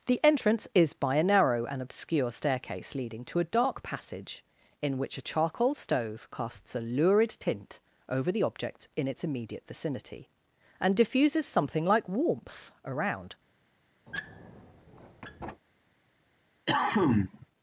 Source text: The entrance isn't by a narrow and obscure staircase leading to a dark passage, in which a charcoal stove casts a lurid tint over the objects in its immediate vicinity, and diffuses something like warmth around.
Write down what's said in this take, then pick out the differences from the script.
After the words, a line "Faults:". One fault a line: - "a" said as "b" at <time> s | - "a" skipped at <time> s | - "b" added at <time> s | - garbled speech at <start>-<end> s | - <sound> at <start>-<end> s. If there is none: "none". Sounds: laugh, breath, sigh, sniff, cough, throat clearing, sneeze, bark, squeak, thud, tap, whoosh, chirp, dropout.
The entrance is by a narrow and obscure staircase leading to a dark passage, in which a charcoal stove casts a lurid tint over the objects in its immediate vicinity, and diffuses something like warmth around.
Faults:
- "isn't" said as "is" at 0.7 s
- squeak at 14.1-15.6 s
- cough at 16.7-17.5 s